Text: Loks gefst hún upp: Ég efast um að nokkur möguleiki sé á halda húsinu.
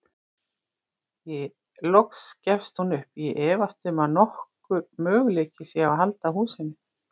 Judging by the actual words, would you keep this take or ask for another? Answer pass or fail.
fail